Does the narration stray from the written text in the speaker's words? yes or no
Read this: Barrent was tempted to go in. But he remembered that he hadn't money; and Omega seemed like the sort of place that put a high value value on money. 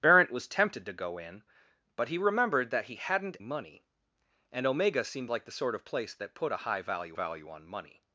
no